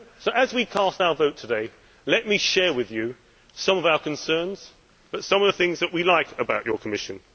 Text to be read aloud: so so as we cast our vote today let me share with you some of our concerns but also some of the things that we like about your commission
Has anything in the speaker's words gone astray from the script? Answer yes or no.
yes